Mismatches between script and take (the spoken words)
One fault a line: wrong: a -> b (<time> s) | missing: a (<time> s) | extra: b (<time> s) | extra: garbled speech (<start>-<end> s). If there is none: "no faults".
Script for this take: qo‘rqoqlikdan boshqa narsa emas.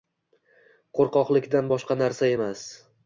no faults